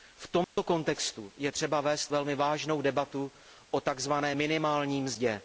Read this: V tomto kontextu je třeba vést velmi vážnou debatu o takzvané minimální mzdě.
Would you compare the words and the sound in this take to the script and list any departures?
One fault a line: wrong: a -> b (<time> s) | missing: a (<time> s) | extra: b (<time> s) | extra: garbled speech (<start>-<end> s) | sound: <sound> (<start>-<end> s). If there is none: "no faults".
sound: dropout (0.4-0.6 s)